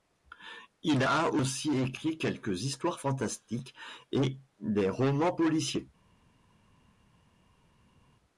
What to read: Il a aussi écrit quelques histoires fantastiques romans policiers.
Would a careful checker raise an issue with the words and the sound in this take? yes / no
yes